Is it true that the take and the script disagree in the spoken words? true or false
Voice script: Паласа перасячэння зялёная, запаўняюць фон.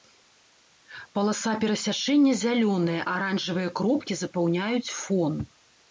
true